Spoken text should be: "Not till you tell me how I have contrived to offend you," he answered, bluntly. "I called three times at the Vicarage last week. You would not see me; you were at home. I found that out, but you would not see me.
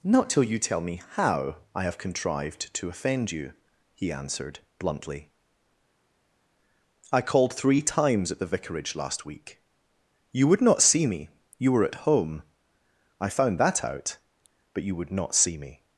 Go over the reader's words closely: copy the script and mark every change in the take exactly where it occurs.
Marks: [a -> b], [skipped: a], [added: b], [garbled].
"Not till you tell me how I have contrived to offend you," he answered, bluntly. "I called three times at the Vicarage last week. You would not see me; you were at home. I found that out, but you would not see me.